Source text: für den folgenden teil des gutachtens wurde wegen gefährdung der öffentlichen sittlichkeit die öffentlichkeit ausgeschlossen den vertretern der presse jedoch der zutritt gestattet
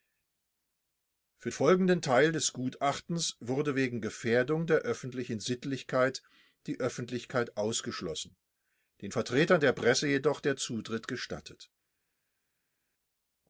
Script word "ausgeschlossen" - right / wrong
right